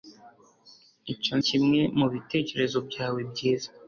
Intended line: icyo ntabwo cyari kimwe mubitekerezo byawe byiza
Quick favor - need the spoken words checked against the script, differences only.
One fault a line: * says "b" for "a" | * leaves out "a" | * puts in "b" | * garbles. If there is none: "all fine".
* leaves out "ntabwo cyari"